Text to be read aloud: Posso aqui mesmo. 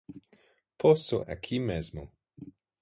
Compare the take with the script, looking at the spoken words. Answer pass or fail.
pass